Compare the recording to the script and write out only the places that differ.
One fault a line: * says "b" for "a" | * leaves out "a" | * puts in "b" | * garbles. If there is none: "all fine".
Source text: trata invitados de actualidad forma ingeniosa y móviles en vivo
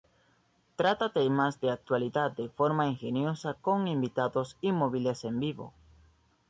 * says "temas" for "invitados"
* puts in "de"
* puts in "con invitados"